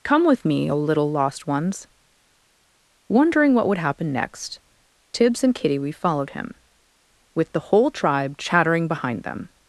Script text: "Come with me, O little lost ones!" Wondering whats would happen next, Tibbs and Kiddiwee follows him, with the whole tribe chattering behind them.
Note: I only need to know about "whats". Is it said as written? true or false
false